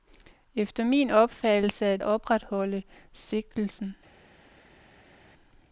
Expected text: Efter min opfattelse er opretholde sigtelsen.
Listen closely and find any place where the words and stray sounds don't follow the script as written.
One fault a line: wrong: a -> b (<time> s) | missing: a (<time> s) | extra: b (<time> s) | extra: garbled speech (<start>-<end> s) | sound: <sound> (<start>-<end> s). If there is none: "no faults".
no faults